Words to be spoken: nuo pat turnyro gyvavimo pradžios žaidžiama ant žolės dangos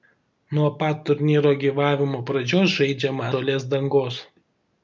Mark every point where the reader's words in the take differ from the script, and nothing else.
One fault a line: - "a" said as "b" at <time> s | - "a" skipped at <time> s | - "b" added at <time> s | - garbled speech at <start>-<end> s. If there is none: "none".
- "ant" skipped at 3.3 s